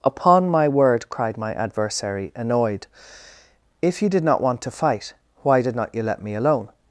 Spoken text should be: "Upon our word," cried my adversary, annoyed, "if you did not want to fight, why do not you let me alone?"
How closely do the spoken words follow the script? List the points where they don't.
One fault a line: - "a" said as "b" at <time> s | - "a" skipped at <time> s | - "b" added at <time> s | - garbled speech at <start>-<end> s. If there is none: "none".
- "our" said as "my" at 0.5 s
- "do" said as "did" at 5.6 s